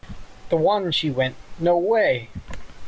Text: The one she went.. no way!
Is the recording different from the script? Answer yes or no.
no